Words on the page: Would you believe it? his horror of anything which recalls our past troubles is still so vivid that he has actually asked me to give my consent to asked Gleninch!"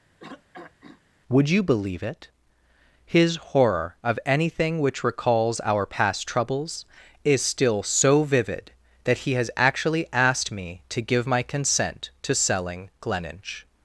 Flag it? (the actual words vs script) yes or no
yes